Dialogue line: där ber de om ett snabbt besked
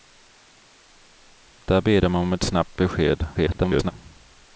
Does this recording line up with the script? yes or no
no